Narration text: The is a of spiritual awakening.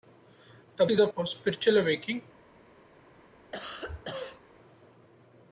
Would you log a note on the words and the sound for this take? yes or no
yes